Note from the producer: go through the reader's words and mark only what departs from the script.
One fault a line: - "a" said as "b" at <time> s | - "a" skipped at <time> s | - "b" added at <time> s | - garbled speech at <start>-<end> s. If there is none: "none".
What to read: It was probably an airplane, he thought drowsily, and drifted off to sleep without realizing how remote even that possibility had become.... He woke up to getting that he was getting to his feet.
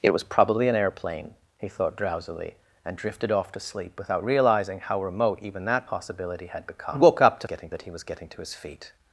none